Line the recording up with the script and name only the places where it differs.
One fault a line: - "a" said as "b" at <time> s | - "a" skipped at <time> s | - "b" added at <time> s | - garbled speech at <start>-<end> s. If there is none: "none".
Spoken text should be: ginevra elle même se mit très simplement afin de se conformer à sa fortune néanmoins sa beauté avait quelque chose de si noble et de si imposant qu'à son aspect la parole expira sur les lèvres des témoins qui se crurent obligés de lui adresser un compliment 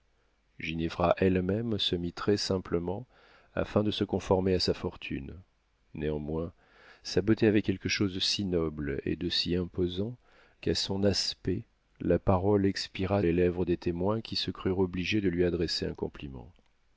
- "sur" skipped at 13.2 s